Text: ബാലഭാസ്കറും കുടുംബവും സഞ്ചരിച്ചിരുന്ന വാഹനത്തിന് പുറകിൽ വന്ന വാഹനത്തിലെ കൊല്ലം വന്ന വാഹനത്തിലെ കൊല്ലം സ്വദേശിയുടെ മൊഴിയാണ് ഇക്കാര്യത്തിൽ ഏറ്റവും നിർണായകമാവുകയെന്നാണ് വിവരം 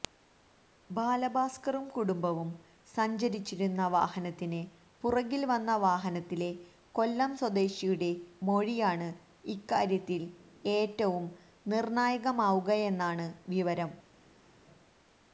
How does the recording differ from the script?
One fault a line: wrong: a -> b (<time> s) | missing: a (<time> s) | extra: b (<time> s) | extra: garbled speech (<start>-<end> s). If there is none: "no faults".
missing: വന്ന വാഹനത്തിലെ കൊല്ലം (7.3 s)